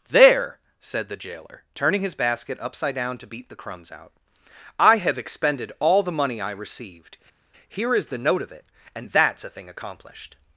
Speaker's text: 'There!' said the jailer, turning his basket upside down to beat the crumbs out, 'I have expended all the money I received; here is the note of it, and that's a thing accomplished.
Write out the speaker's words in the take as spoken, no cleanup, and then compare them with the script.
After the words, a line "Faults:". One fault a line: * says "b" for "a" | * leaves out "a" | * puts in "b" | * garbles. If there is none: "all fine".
'There!' said the jailer, turning his basket upside down to beat the crumbs out, 'I have expended all the money I received; here is the note of it, and that's a thing accomplished.
Faults:
all fine